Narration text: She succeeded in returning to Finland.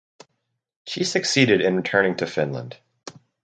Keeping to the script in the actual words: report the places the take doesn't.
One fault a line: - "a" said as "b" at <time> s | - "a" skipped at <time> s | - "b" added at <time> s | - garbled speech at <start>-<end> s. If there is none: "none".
none